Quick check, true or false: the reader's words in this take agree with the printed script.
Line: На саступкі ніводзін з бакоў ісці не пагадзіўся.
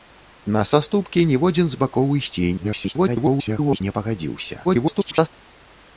false